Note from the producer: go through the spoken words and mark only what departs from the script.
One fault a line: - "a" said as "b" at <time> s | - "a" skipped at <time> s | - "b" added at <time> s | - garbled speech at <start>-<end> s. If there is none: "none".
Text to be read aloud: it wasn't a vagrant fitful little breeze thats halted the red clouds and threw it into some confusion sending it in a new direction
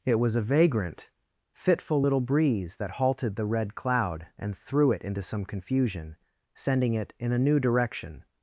- "wasn't" said as "was" at 0.2 s
- "thats" said as "that" at 2.8 s
- "clouds" said as "cloud" at 3.7 s